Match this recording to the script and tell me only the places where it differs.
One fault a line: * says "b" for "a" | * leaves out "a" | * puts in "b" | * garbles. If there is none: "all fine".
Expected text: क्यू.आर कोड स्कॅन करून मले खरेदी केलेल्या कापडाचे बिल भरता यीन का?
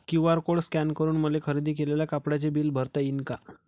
all fine